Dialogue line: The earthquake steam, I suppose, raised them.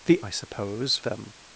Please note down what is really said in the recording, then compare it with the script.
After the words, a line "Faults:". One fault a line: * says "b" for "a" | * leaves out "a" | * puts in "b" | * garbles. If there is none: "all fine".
The I suppose, them.
Faults:
* leaves out "earthquake steam"
* leaves out "raised"